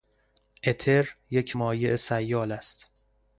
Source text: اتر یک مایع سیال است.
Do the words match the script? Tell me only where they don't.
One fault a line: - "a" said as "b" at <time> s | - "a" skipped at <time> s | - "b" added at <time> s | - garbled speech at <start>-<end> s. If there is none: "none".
none